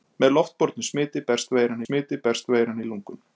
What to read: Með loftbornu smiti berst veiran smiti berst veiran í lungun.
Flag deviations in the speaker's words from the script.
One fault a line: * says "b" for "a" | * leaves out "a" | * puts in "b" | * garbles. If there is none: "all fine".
all fine